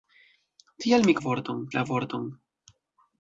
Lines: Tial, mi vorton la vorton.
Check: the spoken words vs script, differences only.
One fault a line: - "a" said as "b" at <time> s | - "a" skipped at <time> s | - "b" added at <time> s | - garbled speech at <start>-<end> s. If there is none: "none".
none